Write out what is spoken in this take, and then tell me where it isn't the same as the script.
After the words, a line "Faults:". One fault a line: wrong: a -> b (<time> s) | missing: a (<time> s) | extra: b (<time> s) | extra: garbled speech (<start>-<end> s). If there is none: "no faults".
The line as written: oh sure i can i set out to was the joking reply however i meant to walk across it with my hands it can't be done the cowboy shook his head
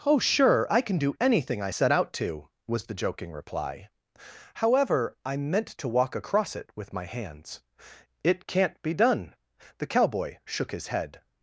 oh sure i can do anything i set out to was the joking reply however i meant to walk across it with my hands it can't be done the cowboy shook his head
Faults:
extra: do anything (1.0 s)